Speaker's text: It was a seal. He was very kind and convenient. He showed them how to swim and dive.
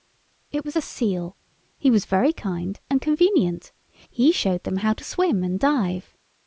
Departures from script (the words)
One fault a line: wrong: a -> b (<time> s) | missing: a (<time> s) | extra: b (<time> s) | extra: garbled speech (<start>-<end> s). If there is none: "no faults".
no faults